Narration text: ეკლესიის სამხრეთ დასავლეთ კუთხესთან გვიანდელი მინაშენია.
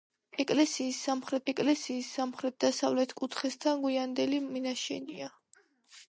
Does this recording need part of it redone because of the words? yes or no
yes